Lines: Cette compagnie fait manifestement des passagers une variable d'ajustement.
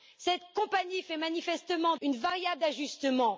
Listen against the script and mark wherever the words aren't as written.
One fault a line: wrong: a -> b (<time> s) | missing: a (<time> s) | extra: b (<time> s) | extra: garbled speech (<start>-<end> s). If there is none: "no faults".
missing: des passagers (2.0 s)